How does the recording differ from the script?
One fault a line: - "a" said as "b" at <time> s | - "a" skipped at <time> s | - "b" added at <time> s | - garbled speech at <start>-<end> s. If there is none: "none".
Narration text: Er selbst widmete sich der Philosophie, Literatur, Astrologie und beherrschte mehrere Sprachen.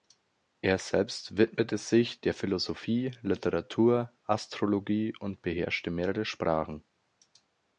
none